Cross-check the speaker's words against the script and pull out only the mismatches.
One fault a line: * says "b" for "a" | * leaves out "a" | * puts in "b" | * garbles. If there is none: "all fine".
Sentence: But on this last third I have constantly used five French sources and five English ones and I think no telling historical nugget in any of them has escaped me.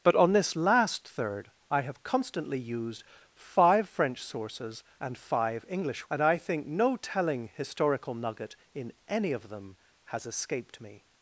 * leaves out "ones"